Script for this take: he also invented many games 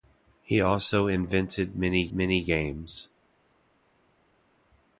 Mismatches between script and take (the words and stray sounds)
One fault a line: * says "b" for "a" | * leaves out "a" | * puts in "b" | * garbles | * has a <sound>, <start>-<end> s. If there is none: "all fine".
* puts in "many"